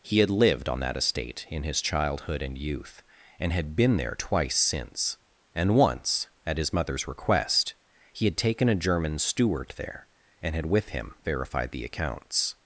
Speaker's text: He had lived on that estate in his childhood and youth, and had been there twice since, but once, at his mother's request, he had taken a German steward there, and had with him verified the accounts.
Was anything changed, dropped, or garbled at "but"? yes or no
yes